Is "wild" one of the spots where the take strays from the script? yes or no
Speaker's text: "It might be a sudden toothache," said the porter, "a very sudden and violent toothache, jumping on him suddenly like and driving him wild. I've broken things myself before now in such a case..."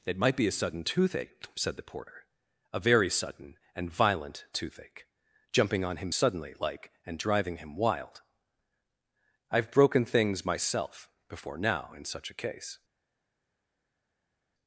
no